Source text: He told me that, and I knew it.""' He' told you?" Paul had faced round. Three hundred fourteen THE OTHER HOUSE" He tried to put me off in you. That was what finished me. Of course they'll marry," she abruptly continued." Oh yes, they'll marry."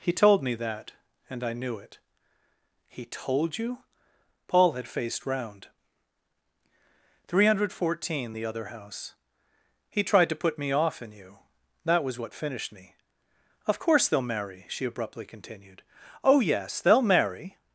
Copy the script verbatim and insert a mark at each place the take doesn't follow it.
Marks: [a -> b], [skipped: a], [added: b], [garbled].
He told me that, and I knew it.""' He' told you?" Paul had faced round. Three hundred fourteen THE OTHER HOUSE" He tried to put me off in you. That was what finished me. Of course they'll marry," she abruptly continued." Oh yes, they'll marry."